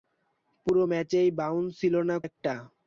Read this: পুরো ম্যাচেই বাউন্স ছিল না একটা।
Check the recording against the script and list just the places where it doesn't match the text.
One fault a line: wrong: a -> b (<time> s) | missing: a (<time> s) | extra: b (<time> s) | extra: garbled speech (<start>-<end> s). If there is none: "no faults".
no faults